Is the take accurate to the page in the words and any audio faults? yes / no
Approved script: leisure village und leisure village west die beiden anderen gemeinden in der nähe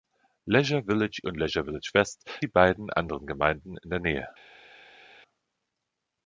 yes